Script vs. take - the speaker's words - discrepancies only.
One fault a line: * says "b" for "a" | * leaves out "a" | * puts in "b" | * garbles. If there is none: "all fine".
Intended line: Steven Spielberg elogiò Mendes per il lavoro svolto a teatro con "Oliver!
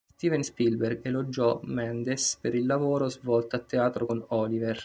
all fine